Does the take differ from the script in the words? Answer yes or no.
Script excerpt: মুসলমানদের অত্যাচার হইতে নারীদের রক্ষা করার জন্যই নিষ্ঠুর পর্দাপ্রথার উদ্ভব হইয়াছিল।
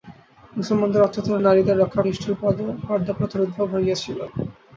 yes